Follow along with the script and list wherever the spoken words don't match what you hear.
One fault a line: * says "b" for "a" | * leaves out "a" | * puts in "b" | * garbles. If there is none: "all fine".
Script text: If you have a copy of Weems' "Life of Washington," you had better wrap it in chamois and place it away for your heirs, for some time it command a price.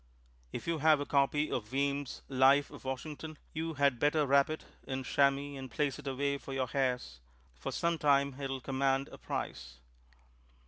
* puts in "will"